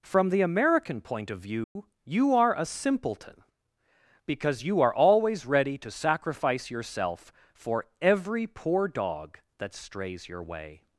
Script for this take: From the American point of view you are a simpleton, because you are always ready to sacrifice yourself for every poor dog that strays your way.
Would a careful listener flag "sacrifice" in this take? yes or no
no